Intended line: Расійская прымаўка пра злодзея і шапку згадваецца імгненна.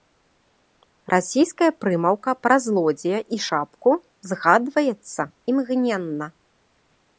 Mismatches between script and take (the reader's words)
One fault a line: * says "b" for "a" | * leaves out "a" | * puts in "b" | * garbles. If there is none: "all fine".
all fine